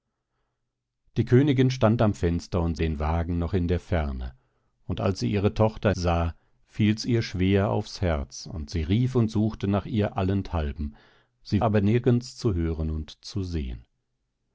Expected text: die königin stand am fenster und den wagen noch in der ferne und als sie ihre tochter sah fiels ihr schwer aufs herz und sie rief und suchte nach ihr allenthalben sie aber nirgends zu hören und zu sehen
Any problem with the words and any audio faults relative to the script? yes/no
no